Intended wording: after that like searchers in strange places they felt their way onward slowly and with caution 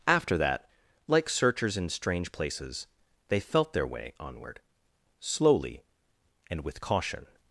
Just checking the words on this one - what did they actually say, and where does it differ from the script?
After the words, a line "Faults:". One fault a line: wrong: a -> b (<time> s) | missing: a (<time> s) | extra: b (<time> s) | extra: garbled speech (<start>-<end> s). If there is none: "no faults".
after that like searchers in strange places they felt their way onward slowly and with caution
Faults:
no faults